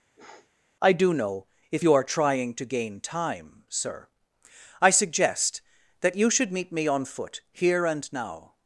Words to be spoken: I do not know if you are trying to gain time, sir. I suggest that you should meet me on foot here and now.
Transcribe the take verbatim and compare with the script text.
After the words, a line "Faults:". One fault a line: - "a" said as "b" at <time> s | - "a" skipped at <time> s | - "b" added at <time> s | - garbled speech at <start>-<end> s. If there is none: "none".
I do know if you are trying to gain time, sir. I suggest that you should meet me on foot here and now.
Faults:
- "not" skipped at 1.1 s